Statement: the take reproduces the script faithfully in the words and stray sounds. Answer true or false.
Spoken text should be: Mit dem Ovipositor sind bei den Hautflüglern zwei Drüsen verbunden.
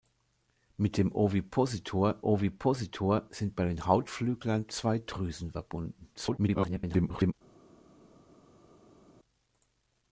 false